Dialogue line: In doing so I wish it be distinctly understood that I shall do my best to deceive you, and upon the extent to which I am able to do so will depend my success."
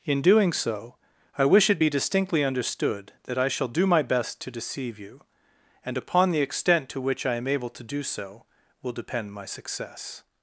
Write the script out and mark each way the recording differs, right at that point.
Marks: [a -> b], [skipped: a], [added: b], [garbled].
In doing so I wish it be distinctly understood that I shall do my best to deceive you, and upon the extent to which I am able to do so will depend my success."